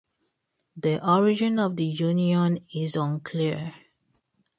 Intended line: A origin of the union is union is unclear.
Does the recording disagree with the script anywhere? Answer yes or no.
yes